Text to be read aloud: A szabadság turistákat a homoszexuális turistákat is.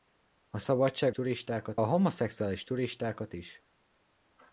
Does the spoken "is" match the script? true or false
true